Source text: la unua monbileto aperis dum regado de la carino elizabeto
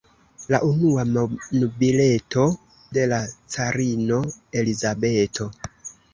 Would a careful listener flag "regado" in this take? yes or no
yes